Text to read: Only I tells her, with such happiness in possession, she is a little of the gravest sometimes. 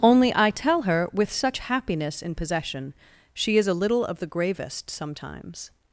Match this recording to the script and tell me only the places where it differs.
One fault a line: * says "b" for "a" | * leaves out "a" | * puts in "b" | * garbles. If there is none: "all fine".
* says "tell" for "tells"